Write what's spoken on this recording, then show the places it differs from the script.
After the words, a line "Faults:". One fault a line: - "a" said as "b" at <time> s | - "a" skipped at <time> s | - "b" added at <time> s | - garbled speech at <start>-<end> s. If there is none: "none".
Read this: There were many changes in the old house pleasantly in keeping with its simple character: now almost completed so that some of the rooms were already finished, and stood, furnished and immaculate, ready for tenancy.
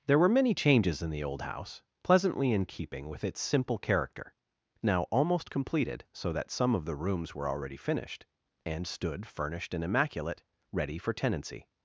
There were many changes in the old house pleasantly in keeping with its simple character: now almost completed so that some of the rooms were already finished, and stood, furnished and immaculate, ready for tenancy.
Faults:
none